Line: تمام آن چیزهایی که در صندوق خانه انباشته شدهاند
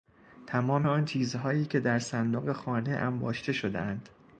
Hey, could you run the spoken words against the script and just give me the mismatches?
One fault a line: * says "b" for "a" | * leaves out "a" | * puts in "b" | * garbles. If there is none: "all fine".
all fine